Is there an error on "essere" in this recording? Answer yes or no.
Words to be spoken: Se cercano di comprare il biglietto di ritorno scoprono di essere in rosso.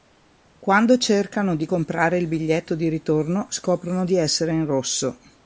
no